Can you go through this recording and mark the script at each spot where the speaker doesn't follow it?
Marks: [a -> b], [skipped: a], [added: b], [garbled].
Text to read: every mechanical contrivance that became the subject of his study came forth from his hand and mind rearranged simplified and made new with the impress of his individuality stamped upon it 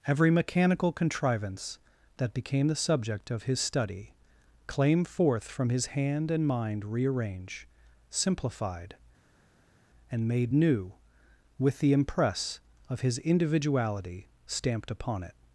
every mechanical contrivance that became the subject of his study [came -> claim] forth from his hand and mind [rearranged -> rearrange] simplified and made new with the impress of his individuality stamped upon it